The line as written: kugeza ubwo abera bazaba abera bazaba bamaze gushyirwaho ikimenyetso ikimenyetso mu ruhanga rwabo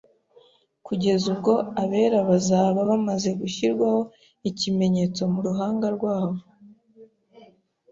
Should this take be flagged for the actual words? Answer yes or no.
yes